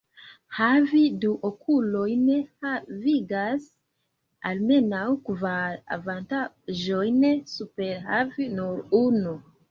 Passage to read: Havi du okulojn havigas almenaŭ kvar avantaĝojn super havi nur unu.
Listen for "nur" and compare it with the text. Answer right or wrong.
right